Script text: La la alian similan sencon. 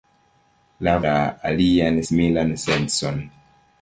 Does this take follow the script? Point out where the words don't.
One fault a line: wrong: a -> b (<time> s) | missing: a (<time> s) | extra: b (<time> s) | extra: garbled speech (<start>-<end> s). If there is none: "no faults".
no faults